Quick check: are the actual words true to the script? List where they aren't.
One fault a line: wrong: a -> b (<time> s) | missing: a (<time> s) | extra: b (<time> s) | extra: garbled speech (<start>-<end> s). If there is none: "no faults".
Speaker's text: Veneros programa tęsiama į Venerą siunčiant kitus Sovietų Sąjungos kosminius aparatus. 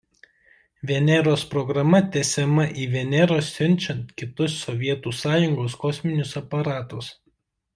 no faults